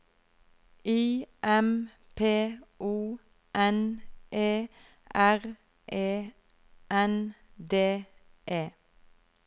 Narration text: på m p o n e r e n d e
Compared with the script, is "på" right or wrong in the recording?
wrong